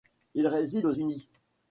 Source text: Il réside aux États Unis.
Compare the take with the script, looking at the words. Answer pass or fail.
fail